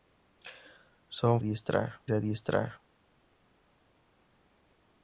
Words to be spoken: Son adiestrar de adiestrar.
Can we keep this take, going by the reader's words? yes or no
yes